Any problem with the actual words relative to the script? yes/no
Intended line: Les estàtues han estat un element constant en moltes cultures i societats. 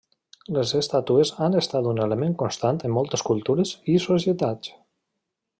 no